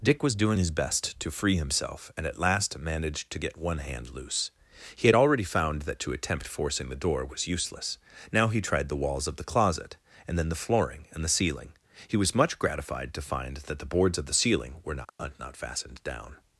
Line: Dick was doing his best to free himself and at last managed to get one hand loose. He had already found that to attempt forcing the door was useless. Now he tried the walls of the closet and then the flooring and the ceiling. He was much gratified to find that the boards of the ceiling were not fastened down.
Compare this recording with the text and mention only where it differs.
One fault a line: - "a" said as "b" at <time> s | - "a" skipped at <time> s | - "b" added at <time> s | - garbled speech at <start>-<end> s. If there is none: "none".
- "not" added at 15.4 s